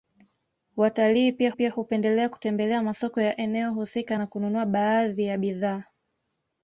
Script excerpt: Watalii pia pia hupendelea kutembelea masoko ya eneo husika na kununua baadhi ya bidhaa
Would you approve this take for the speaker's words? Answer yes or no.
yes